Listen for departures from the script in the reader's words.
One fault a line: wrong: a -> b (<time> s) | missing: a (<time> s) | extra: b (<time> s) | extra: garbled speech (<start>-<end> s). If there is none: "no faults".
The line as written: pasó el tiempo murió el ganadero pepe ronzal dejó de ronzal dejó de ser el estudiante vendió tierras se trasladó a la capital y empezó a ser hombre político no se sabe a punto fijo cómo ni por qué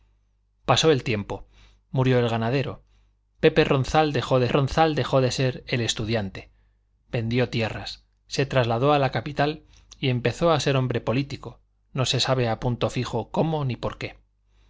no faults